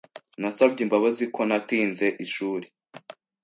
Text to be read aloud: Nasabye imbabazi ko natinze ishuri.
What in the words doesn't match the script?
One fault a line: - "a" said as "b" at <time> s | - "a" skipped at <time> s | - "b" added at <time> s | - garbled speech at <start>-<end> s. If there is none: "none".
none